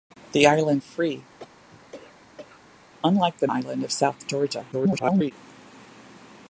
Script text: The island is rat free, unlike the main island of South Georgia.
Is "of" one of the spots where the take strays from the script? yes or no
no